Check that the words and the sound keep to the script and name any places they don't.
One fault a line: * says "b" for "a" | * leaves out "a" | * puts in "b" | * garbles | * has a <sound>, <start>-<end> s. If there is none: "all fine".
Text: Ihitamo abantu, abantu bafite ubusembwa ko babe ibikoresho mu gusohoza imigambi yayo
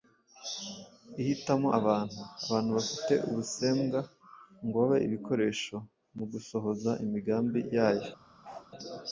* says "ngo" for "ko"
* has a bark, 8.4-8.7 s